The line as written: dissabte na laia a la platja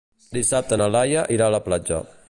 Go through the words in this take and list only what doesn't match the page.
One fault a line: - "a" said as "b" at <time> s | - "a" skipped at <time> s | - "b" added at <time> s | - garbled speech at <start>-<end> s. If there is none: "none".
- "irà" added at 1.4 s